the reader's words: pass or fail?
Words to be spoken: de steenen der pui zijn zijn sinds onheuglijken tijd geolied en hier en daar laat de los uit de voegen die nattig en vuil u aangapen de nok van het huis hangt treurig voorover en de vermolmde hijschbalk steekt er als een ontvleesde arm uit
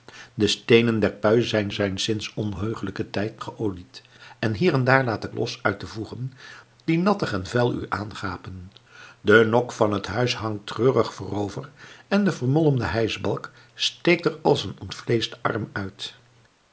pass